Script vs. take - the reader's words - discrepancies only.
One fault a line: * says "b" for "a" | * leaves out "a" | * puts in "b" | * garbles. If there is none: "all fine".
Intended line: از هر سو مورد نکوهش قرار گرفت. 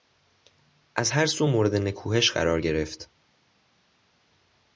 all fine